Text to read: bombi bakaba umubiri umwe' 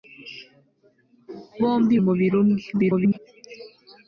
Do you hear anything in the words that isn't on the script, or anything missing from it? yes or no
yes